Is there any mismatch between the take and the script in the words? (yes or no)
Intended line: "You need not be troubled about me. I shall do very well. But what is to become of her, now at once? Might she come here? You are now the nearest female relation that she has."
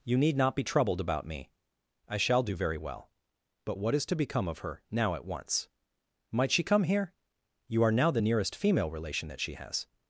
no